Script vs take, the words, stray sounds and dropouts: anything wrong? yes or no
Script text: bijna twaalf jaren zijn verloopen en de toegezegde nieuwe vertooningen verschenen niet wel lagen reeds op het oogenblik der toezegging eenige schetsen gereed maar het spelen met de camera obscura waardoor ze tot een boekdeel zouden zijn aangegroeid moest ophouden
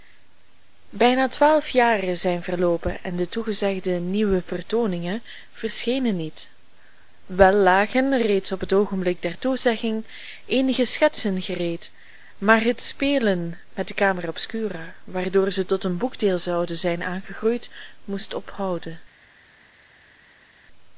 no